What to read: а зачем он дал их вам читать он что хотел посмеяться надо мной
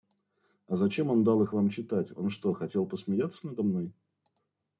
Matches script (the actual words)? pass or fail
pass